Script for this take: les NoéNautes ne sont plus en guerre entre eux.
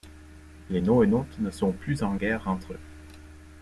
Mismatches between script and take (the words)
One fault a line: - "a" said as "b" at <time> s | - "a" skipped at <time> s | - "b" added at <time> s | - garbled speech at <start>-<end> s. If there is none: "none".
none